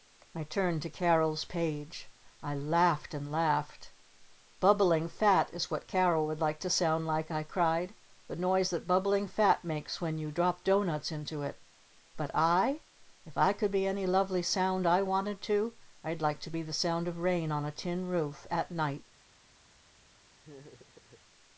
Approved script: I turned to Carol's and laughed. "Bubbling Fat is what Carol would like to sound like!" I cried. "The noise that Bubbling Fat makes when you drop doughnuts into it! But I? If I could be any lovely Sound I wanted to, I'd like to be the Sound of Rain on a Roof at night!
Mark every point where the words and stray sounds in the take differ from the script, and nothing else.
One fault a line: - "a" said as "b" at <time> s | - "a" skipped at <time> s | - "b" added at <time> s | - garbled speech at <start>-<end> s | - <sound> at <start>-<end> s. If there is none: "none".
- "page I laughed" added at 1.4 s
- "Tin" added at 17.7 s
- laugh at 20.4-21.2 s